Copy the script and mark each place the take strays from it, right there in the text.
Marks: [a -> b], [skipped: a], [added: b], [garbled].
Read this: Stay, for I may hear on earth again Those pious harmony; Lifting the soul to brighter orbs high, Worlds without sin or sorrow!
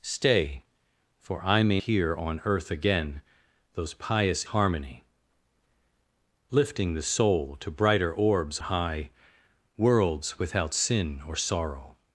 Stay, for I may hear on earth again Those pious harmony; Lifting the soul to brighter orbs high, Worlds without sin or sorrow!